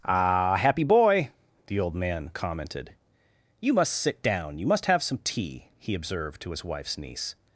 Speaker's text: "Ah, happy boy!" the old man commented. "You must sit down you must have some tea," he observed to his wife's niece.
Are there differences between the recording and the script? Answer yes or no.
no